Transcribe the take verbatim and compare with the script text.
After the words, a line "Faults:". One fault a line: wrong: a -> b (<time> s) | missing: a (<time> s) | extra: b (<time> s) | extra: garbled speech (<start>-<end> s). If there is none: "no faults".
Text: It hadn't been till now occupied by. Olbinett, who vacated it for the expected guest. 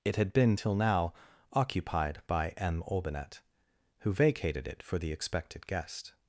It had been till now occupied by M. Olbinett, who vacated it for the expected guest.
Faults:
wrong: hadn't -> had (0.1 s)
extra: M (2.5 s)